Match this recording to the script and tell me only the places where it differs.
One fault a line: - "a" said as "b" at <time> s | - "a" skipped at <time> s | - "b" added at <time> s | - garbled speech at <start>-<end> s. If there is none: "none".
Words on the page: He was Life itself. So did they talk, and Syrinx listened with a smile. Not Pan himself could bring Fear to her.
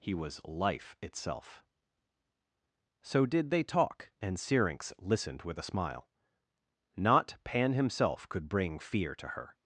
none